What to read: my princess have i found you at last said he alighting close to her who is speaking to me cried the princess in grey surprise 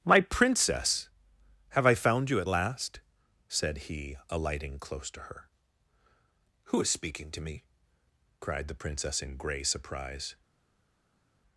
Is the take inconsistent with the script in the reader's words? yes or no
no